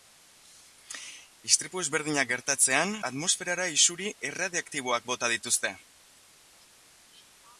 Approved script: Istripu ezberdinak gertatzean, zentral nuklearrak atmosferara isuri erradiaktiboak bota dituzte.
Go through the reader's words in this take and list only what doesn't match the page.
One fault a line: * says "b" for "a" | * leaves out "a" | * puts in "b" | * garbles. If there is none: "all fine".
* leaves out "zentral nuklearrak"